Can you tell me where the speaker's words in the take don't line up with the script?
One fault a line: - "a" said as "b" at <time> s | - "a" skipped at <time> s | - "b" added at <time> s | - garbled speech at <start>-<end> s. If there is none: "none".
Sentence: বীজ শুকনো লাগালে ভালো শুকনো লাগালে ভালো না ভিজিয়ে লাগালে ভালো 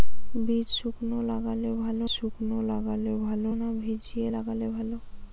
none